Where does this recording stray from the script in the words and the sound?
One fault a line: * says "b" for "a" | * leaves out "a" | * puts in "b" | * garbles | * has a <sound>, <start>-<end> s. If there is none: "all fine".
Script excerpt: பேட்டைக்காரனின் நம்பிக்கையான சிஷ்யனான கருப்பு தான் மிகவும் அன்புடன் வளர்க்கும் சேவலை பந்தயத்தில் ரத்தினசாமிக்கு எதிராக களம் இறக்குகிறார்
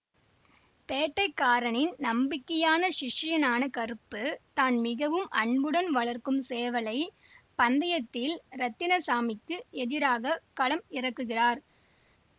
all fine